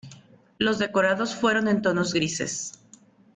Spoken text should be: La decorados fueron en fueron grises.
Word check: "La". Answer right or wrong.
wrong